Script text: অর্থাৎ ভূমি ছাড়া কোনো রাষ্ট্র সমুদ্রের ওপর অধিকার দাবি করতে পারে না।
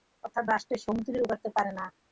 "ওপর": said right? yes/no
no